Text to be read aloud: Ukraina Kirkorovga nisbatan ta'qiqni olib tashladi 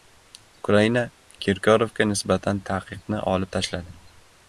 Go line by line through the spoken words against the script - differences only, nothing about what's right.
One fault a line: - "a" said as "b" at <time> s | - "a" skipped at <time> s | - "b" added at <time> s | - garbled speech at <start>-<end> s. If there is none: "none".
none